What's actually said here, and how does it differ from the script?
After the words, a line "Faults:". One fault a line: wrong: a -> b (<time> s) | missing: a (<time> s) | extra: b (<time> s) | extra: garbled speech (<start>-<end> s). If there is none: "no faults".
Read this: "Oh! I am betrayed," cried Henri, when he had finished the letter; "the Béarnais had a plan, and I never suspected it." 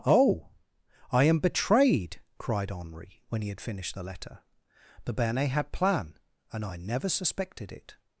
"Oh! I am betrayed," cried Henri, when he had finished the letter; "the Béarnais had plan, and I never suspected it."
Faults:
missing: a (5.7 s)